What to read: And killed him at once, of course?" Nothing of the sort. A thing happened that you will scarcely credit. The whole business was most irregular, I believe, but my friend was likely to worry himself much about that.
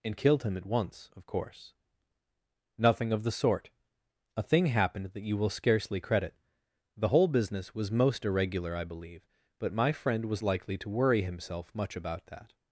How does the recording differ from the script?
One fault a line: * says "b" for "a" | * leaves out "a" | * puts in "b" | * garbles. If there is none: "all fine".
all fine